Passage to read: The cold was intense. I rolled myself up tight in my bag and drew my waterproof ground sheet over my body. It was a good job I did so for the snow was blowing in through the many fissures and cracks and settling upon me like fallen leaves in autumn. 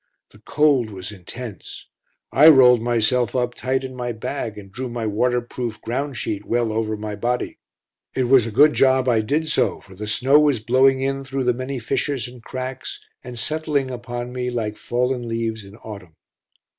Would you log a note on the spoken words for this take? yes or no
yes